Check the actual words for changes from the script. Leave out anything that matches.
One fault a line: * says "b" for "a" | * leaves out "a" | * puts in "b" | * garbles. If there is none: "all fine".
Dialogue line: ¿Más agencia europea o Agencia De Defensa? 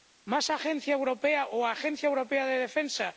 * puts in "Europea"